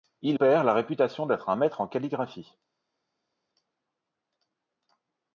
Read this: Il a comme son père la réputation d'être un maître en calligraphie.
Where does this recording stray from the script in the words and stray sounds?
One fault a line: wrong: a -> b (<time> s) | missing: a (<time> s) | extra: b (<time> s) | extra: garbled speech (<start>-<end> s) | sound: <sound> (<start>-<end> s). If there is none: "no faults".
missing: a comme son (0.4 s)